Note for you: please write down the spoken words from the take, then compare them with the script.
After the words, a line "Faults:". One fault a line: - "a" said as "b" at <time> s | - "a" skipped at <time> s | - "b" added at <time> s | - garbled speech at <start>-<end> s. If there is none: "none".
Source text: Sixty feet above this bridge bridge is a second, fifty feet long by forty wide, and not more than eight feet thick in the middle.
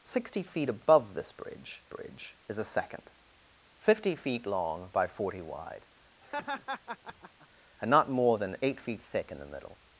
Sixty feet above this bridge bridge is a second, fifty feet long by forty wide, and not more than eight feet thick in the middle.
Faults:
none